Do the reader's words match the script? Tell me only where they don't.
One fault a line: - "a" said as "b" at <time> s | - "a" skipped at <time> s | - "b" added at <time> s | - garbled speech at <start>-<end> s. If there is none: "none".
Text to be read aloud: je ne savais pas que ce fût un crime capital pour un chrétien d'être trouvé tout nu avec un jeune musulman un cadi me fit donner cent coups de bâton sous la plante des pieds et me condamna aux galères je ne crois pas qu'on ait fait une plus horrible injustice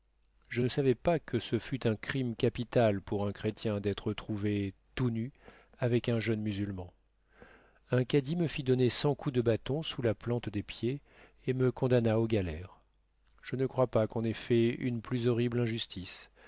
none